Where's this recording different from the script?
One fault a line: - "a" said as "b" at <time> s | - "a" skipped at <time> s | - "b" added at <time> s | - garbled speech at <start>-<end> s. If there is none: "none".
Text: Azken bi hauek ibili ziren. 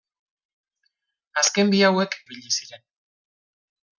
none